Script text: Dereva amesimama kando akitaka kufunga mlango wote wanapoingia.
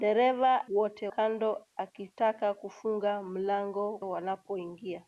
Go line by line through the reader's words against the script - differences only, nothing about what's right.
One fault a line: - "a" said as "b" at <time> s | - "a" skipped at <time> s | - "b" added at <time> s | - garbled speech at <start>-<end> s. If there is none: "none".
- "amesimama" said as "wote" at 0.8 s
- "wote" skipped at 3.9 s